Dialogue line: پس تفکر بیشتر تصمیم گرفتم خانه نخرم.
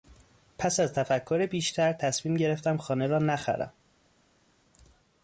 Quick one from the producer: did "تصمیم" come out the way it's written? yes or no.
yes